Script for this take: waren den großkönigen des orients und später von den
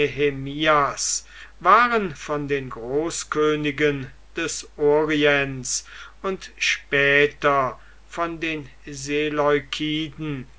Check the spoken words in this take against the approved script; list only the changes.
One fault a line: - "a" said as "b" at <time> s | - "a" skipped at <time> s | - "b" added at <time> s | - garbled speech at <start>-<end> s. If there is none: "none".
- "von" added at 2.1 s